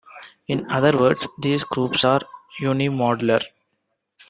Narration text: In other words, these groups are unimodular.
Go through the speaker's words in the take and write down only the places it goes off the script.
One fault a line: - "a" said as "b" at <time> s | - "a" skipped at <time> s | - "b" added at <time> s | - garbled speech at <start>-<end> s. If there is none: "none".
none